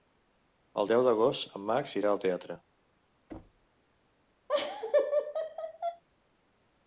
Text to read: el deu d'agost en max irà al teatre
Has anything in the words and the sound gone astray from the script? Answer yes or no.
yes